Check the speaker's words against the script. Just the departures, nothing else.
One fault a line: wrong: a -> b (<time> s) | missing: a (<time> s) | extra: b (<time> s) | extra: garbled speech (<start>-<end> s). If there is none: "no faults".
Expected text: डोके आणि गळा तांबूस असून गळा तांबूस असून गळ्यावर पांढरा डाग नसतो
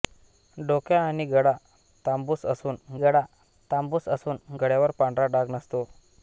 no faults